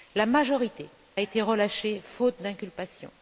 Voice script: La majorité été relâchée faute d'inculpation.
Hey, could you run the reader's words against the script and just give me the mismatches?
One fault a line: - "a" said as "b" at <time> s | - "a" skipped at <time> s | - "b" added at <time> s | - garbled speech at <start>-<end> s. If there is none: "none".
none